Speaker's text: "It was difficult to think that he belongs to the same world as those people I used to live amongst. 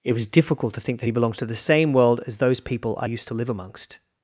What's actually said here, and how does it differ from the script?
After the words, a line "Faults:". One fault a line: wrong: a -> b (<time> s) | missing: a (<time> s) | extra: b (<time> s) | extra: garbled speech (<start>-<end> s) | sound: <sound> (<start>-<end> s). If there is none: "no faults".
"It was difficult to think that he belongs to the same world as those people I used to live amongst.
Faults:
no faults